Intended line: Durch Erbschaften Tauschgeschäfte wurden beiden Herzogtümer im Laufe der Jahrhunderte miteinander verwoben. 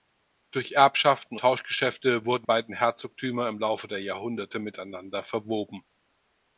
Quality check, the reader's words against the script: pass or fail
pass